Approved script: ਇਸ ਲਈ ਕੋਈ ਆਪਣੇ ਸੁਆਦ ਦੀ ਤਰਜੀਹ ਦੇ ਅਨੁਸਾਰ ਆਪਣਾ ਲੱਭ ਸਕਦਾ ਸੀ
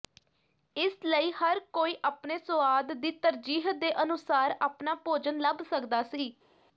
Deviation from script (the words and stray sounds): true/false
true